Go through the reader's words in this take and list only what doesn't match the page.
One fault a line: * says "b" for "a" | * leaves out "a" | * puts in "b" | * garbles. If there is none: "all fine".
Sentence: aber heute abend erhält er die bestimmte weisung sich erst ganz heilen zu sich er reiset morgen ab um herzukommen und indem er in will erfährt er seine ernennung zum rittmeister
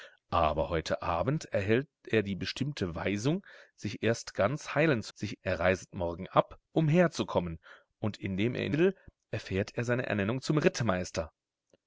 all fine